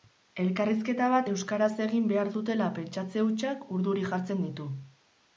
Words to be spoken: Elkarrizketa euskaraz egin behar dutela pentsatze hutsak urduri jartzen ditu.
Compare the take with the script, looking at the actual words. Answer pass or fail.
fail